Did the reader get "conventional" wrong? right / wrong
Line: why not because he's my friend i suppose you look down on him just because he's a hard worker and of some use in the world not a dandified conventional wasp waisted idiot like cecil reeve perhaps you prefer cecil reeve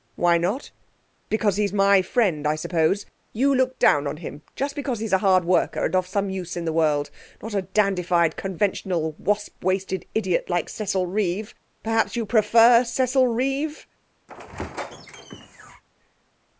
right